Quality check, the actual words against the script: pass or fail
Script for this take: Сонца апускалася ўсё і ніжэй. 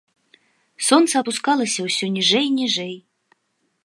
fail